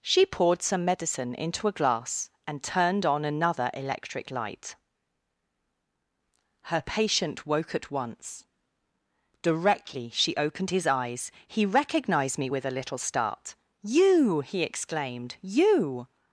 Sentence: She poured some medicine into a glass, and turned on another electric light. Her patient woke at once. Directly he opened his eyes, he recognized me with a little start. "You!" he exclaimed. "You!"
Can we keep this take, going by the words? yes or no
no